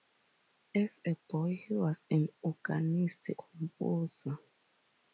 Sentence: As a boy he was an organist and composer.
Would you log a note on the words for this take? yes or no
yes